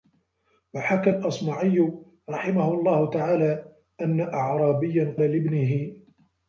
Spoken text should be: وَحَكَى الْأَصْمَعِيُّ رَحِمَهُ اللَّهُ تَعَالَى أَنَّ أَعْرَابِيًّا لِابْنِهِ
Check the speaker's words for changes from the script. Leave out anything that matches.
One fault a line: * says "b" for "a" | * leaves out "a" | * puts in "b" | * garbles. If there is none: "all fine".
all fine